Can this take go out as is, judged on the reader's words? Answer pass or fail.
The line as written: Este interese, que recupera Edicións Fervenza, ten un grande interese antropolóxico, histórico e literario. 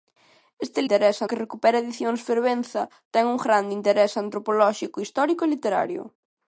pass